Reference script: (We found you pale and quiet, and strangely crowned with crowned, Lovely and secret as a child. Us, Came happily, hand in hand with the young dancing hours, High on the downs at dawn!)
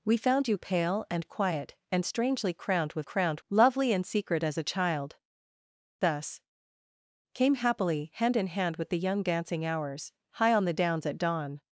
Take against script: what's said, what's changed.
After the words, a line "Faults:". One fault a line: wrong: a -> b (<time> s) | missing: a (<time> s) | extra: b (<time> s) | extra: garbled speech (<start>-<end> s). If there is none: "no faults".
(We found you pale and quiet, and strangely crowned with crowned, Lovely and secret as a child. Us, Came happily, hand in hand with the young dancing hours, High on the downs at dawn!)
Faults:
no faults